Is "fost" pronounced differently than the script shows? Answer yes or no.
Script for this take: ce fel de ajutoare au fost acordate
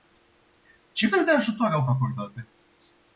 yes